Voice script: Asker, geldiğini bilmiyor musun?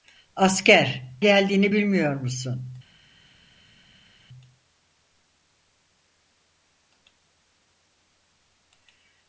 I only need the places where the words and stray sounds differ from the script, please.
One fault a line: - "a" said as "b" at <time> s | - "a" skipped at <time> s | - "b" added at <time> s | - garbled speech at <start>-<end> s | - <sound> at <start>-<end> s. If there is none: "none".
none